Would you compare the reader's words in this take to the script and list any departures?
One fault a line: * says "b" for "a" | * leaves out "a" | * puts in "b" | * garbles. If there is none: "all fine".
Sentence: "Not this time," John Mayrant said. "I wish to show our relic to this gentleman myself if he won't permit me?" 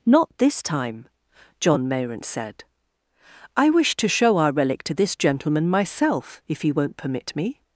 all fine